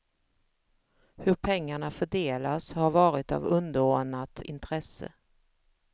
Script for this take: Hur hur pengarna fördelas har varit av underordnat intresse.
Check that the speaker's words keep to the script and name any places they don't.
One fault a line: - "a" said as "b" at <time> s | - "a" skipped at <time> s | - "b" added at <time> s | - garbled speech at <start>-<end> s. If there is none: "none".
- "hur" skipped at 1.4 s